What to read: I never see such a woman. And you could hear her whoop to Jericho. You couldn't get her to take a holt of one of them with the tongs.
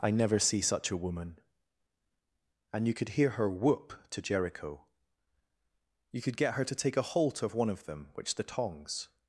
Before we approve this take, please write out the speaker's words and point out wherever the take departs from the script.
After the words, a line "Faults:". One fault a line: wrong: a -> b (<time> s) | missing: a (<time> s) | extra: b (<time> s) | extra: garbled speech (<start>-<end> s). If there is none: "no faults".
I never see such a woman. And you could hear her whoop to Jericho. You could get her to take a holt of one of them which the tongs.
Faults:
wrong: couldn't -> could (6.2 s)
wrong: with -> which (8.1 s)